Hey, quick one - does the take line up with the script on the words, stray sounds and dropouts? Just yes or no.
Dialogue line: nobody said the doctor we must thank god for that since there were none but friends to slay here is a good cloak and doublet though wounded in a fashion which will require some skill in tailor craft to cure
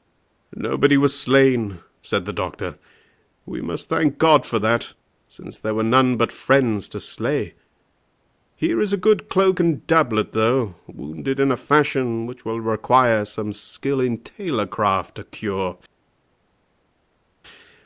no